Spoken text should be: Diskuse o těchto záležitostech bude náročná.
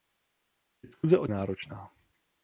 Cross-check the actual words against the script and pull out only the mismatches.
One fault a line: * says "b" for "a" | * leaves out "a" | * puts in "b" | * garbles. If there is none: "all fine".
* leaves out "těchto záležitostech bude"